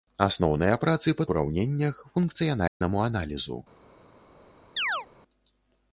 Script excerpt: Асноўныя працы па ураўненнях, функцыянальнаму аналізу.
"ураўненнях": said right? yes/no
yes